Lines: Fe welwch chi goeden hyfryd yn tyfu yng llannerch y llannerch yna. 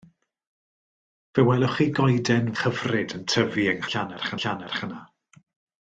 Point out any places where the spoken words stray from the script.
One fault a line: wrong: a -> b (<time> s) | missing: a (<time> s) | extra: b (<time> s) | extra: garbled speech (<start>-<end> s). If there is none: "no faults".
no faults